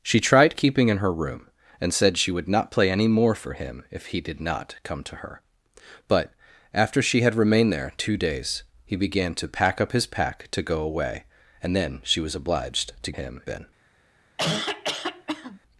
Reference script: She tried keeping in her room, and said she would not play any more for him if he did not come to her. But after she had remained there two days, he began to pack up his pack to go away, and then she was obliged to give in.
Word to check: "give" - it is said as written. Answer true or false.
false